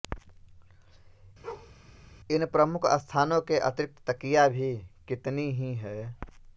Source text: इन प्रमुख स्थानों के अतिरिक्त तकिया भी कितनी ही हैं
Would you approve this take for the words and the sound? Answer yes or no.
no